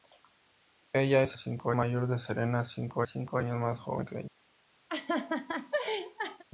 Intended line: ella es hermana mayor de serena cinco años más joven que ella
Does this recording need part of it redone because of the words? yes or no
yes